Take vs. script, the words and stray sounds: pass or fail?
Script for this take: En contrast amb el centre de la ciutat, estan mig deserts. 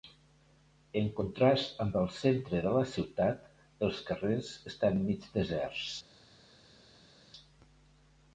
fail